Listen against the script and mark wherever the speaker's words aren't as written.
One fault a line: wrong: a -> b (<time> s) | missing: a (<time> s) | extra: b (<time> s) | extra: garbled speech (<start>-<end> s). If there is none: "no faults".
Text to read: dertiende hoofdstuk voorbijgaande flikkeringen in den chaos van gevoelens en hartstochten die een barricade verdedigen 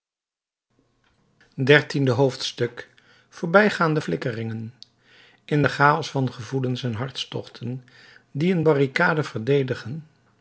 no faults